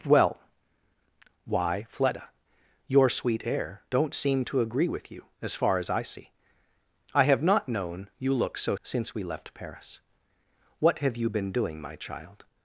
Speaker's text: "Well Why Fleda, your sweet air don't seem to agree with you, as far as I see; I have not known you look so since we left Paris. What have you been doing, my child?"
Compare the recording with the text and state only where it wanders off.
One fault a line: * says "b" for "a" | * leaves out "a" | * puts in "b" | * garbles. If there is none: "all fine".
all fine